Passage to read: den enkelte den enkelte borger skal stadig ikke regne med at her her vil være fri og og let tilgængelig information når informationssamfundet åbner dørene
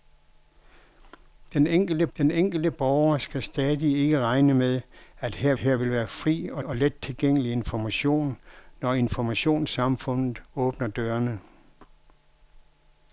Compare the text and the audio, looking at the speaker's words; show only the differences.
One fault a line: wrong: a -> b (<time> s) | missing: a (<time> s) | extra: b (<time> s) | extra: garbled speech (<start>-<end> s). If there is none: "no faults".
no faults